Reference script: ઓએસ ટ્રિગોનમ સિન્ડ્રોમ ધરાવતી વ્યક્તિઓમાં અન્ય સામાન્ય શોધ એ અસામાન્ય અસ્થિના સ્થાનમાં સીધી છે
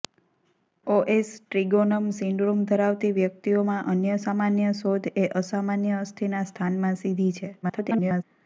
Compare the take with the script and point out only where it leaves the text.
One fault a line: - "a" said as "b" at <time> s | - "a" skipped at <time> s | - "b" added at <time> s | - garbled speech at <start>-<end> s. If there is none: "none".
- garbled speech at 7.6-8.2 s